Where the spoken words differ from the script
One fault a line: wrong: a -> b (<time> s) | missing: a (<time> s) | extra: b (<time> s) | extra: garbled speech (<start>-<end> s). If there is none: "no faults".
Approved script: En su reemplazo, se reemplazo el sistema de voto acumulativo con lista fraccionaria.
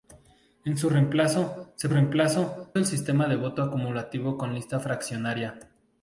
no faults